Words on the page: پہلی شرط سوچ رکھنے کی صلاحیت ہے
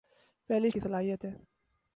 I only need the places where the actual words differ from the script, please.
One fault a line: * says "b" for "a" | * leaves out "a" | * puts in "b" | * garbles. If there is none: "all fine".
* leaves out "شرط سوچ رکھنے"